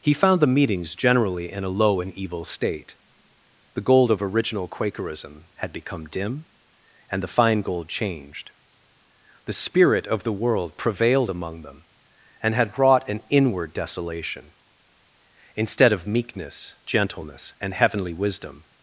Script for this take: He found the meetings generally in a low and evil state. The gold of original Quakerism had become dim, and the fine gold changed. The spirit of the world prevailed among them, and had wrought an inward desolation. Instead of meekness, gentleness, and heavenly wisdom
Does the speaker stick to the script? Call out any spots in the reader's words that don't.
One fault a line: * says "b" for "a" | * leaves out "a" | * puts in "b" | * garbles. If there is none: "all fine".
all fine